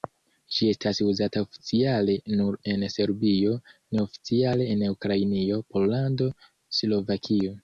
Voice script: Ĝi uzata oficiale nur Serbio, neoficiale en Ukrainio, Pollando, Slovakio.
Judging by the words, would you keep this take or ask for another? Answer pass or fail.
fail